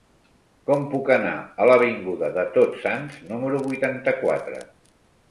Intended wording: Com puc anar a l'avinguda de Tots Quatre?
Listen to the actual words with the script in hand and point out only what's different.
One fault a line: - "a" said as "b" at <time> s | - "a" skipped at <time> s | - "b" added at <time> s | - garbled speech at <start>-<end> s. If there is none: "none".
- "Sants número vuitanta" added at 2.9 s